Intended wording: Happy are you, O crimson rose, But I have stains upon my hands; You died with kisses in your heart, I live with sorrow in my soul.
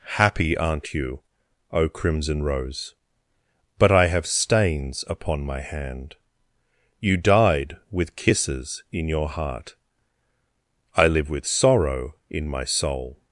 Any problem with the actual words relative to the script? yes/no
yes